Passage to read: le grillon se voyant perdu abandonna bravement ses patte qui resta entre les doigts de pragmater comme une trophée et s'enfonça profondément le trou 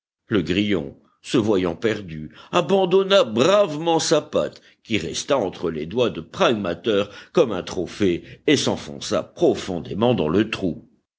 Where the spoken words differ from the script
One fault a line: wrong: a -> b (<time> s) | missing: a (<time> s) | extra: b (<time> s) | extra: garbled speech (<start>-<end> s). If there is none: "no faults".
wrong: ses -> sa (4.0 s)
wrong: une -> un (7.5 s)
extra: dans (10.1 s)